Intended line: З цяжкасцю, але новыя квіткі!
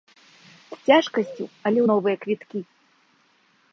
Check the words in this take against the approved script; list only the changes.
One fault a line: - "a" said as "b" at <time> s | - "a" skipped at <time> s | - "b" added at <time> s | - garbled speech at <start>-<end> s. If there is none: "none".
none